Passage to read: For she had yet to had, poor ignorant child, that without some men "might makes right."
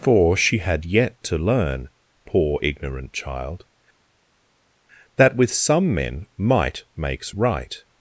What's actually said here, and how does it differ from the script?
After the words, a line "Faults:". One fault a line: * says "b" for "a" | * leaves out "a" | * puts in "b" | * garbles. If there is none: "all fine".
For she had yet to learn, poor ignorant child, that with some men "might makes right."
Faults:
* says "learn" for "had"
* says "with" for "without"